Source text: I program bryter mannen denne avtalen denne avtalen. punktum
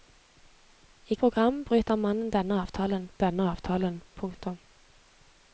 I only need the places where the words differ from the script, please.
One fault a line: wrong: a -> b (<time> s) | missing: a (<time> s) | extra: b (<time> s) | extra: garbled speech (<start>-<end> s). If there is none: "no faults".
no faults